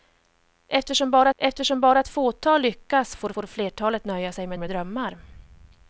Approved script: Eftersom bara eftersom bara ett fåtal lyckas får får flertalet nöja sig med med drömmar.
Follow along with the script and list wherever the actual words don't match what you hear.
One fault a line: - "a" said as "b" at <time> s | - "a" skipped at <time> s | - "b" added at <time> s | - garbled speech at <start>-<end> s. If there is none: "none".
none